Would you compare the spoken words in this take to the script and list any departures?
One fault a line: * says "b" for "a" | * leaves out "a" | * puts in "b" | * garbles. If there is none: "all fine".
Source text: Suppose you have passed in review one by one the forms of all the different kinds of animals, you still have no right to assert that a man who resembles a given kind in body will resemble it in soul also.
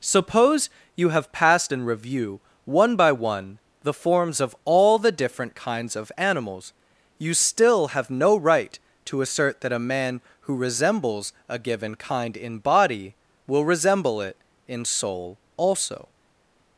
all fine